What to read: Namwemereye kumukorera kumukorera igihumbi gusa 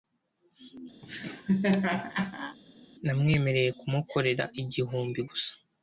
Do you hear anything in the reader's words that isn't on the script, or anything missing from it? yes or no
yes